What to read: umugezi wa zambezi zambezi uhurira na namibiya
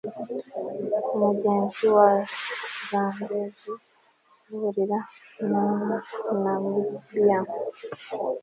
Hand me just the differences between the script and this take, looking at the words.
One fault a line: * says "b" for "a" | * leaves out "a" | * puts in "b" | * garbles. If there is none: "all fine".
* leaves out "zambezi"